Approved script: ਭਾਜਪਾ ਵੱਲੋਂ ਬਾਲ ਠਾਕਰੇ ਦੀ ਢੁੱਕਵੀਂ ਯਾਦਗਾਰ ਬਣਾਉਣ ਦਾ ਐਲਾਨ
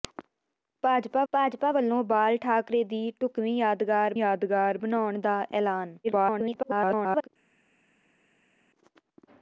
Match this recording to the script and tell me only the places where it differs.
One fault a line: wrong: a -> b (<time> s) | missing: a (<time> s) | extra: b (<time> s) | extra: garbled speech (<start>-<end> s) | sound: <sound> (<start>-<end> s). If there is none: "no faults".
extra: ਭਾਜਪਾ (1.3 s)
extra: ਯਾਦਗਾਰ (4.2 s)
extra: garbled speech (6.0-7.3 s)